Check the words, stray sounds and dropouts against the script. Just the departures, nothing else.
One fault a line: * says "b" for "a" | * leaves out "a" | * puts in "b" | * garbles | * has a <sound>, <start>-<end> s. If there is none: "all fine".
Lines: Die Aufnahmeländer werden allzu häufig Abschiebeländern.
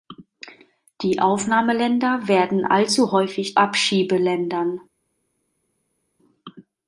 all fine